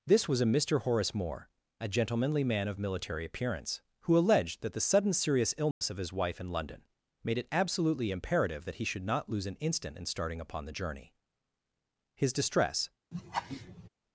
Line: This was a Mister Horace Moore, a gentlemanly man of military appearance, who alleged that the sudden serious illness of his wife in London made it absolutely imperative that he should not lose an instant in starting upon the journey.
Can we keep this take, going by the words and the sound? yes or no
no